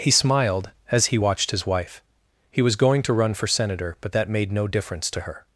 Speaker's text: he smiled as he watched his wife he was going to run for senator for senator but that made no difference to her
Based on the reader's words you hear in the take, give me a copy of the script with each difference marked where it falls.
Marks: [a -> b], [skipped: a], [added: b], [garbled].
he smiled as he watched his wife he was going to run for senator [skipped: for senator] but that made no difference to her